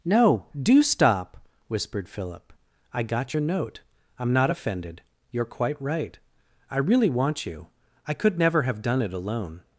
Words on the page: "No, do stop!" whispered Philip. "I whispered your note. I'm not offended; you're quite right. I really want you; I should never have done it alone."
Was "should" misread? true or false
true